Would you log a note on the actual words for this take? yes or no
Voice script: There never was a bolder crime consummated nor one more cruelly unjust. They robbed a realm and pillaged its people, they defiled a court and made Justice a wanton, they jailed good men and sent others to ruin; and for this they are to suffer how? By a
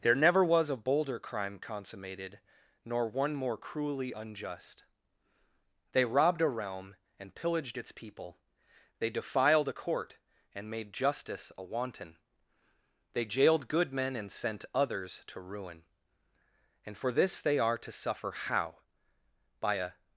no